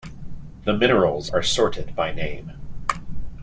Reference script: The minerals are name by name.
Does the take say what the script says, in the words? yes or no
no